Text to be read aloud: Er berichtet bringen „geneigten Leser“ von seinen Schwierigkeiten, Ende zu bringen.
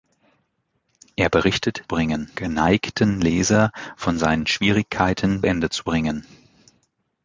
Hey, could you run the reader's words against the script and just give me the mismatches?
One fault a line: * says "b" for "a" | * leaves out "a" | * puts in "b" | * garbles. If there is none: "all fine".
all fine